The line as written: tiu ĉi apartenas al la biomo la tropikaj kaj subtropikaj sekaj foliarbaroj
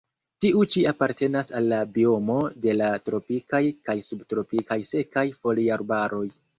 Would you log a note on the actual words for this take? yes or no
yes